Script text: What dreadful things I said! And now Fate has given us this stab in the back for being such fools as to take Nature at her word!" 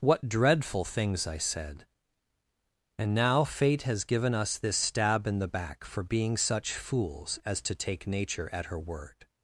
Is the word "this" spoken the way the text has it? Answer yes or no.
yes